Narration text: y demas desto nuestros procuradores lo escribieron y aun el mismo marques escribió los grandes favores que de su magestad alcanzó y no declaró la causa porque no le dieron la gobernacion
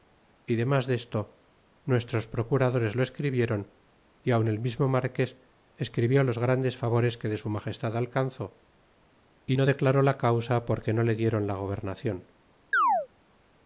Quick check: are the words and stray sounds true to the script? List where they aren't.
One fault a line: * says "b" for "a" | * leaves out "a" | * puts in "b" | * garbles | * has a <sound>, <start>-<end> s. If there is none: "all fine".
* has a chirp, 12.7-13.1 s